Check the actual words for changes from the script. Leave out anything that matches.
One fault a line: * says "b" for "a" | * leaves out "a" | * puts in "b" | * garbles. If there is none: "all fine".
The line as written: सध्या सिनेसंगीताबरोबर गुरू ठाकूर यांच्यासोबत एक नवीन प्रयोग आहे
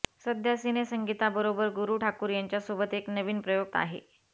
all fine